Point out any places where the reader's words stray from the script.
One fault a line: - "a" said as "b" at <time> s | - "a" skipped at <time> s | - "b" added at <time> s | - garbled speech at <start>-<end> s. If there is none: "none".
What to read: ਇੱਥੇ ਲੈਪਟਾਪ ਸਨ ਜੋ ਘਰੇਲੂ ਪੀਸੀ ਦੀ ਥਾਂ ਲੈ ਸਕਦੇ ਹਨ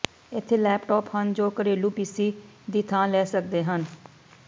- "ਸਨ" said as "ਹਨ" at 1.1 s